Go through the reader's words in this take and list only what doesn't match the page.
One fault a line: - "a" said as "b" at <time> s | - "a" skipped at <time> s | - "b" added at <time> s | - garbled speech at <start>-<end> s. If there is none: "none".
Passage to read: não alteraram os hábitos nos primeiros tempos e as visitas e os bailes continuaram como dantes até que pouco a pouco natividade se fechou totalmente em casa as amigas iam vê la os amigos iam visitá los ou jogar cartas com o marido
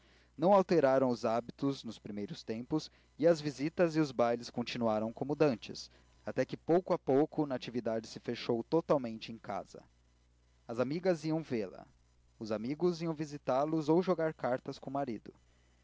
none